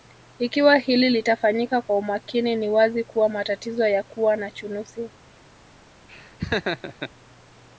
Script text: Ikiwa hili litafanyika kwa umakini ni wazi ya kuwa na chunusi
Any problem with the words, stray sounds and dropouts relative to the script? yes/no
yes